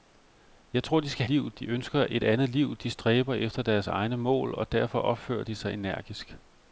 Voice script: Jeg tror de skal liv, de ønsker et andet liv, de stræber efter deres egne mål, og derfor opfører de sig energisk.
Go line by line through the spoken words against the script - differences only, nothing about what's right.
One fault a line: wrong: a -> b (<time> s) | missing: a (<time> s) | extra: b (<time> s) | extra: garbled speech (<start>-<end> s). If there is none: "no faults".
no faults